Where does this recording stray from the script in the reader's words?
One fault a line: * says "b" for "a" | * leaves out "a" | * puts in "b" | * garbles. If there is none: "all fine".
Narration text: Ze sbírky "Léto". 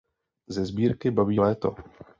* puts in "Babí"